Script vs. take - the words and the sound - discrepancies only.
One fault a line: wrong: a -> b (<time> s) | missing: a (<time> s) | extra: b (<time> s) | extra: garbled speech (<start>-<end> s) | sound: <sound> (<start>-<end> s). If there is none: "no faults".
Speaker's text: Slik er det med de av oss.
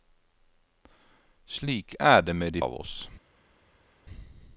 no faults